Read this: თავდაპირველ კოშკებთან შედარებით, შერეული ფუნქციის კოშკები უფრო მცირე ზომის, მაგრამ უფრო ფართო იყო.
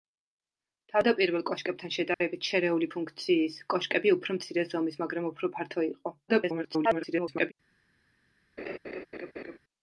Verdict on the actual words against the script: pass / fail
fail